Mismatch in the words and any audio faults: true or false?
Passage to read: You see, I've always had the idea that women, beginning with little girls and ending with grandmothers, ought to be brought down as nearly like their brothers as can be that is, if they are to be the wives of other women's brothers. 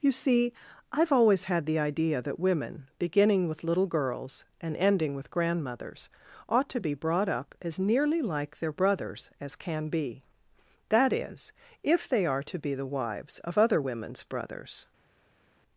true